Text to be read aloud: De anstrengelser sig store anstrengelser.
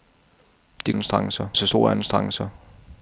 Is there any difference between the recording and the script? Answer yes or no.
no